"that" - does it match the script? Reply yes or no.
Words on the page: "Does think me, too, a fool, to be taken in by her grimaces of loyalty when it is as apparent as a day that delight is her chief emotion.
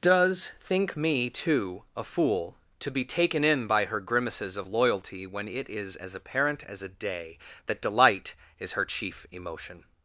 yes